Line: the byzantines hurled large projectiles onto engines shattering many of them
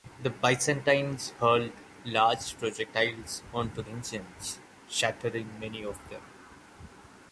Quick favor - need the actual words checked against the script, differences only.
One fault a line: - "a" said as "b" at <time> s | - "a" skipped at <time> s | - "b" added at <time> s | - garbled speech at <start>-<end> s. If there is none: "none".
none